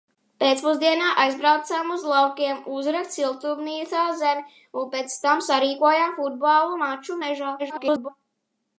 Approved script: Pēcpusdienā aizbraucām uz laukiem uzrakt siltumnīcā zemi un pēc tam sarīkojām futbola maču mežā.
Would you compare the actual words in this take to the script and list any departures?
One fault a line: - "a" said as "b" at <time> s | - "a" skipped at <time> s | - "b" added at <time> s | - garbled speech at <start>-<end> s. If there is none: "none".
- garbled speech at 7.6-8.1 s